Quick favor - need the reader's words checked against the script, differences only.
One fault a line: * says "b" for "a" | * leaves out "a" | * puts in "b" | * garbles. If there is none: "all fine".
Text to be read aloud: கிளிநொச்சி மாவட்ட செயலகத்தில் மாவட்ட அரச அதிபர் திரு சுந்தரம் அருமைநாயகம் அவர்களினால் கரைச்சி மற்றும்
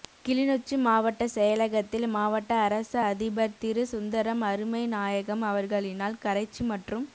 all fine